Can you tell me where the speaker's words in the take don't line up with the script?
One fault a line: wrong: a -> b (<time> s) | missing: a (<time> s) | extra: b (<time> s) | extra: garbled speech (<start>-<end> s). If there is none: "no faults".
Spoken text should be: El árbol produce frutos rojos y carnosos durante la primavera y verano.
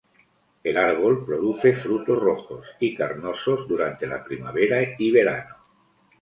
no faults